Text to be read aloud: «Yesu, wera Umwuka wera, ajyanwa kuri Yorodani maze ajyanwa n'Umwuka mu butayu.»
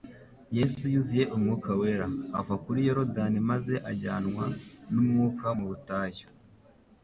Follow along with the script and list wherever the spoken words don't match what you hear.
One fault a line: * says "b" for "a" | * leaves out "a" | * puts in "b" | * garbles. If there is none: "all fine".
* says "yuzuye" for "wera"
* says "ava" for "ajyanwa"